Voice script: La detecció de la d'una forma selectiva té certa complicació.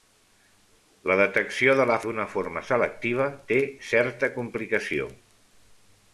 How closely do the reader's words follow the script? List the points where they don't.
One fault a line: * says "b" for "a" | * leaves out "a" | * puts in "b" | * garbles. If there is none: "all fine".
all fine